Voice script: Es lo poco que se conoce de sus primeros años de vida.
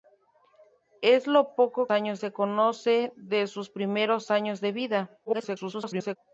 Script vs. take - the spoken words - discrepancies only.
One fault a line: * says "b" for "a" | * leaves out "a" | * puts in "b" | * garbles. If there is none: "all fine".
* says "años" for "que"
* garbles